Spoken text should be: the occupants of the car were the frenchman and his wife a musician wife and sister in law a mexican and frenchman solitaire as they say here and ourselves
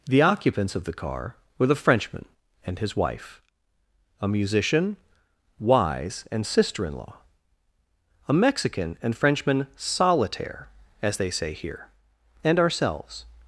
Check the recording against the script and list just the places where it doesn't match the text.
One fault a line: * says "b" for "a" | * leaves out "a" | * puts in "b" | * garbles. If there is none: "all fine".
* says "wise" for "wife"